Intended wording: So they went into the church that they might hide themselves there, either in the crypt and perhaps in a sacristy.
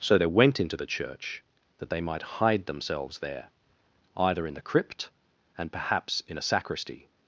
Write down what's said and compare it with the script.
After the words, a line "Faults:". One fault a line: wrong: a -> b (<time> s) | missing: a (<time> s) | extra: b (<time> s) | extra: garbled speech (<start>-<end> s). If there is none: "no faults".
So they went into the church that they might hide themselves there, either in the crypt and perhaps in a sacristy.
Faults:
no faults